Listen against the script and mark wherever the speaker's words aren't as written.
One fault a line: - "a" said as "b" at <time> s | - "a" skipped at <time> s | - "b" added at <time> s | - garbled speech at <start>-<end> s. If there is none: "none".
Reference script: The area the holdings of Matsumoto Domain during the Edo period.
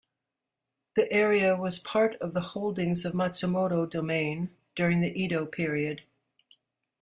- "was part of" added at 1.6 s